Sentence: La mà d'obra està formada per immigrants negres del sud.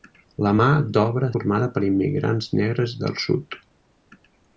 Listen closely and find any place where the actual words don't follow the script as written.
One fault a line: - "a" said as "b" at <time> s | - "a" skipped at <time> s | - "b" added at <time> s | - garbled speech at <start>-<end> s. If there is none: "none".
- "està" skipped at 1.3 s